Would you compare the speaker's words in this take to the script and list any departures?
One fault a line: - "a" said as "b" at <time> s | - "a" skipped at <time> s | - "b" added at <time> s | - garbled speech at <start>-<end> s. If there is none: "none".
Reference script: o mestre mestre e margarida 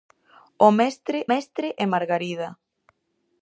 none